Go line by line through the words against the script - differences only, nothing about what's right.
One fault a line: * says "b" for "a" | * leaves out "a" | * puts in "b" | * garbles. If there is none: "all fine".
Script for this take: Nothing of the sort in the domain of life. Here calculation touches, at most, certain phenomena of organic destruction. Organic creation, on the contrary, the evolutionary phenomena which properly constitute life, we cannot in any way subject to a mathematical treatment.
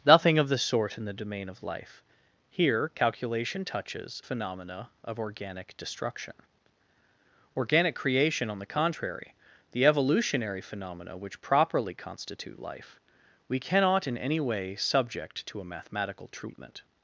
* leaves out "at most certain"